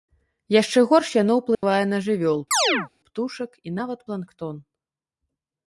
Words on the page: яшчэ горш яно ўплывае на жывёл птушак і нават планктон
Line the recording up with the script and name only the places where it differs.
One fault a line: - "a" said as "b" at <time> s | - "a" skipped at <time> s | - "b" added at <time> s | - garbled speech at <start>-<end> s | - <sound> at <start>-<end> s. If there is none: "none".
- dropout at 1.5-1.6 s
- chirp at 2.5-2.9 s